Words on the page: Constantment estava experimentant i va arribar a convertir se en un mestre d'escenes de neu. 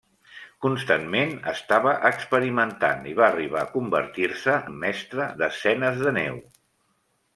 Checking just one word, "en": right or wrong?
wrong